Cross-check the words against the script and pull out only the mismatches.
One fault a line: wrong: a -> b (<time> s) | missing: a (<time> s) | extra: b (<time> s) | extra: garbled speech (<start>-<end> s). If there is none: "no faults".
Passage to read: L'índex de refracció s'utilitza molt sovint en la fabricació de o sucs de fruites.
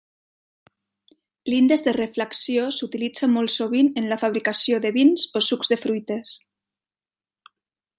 extra: vins (5.0 s)